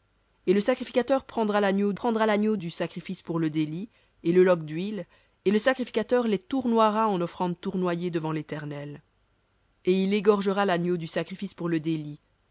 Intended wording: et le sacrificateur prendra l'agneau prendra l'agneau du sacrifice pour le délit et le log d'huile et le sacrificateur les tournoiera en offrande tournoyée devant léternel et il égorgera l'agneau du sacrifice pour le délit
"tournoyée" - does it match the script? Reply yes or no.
yes